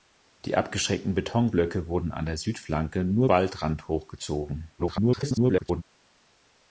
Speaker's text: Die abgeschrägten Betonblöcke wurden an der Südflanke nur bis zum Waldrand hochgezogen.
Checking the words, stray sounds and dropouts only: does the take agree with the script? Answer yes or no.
no